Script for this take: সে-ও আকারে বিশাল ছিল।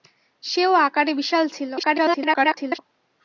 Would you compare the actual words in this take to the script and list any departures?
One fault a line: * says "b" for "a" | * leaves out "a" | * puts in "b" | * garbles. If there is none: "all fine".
* garbles